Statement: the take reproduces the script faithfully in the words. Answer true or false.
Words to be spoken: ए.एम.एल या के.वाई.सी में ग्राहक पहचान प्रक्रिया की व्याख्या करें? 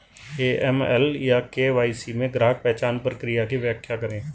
true